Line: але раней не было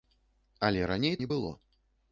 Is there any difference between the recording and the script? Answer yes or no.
no